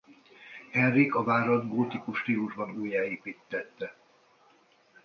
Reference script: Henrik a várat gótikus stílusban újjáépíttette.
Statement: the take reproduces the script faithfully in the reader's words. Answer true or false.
true